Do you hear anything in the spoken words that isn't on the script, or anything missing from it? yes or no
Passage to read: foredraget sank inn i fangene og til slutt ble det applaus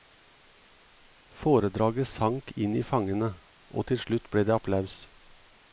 no